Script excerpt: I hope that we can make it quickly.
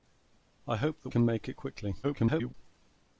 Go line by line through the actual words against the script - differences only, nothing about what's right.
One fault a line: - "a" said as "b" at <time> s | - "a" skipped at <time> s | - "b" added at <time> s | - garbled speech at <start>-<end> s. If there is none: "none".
- "we" skipped at 1.1 s
- garbled speech at 2.0-2.5 s